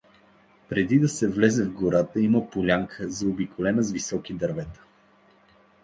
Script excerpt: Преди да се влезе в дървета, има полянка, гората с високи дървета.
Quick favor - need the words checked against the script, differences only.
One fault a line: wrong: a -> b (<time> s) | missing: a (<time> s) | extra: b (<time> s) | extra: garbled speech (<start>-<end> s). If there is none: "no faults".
wrong: дървета -> гората (1.7 s)
wrong: гората -> заобиколена (3.1 s)